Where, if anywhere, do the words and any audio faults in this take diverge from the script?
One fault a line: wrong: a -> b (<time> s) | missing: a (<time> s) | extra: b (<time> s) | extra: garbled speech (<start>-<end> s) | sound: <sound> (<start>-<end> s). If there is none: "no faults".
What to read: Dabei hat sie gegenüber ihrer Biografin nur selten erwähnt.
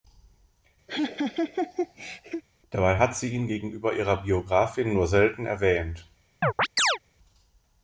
sound: laugh (0.9-2.4 s)
extra: ihn (3.3 s)
sound: chirp (6.4-7.0 s)